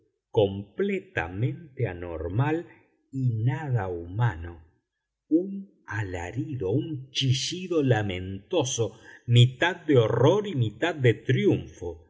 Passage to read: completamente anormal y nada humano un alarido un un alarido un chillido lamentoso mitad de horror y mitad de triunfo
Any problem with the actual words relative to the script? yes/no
yes